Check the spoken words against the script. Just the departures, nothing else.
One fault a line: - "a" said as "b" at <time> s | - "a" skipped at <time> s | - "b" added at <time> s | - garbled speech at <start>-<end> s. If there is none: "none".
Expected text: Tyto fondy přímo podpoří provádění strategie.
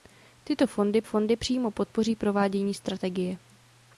- "fondy" added at 1.0 s